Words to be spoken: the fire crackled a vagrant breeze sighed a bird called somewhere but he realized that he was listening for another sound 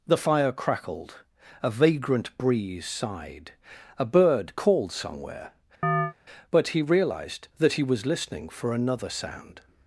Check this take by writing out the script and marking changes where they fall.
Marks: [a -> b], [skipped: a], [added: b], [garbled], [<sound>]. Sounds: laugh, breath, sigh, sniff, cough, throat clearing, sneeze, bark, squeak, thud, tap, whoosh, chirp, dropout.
the fire crackled a vagrant breeze sighed a bird called somewhere [chirp] but he realized that he was listening for another sound